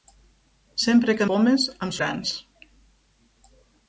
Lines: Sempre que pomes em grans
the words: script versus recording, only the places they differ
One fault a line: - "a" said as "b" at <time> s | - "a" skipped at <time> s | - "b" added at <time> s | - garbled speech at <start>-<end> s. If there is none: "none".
none